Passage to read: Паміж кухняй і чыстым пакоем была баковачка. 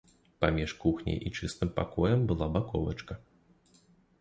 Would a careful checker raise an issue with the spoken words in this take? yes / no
no